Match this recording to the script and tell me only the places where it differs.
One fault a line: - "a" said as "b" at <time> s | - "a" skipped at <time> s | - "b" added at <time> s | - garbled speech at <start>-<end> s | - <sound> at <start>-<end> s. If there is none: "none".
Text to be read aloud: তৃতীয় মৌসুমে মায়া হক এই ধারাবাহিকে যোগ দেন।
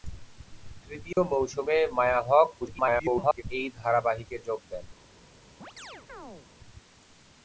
- dropout at 1.1-1.2 s
- garbled speech at 2.6-3.4 s
- chirp at 5.6-6.5 s